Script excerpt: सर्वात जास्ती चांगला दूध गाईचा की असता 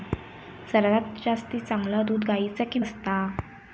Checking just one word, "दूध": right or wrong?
right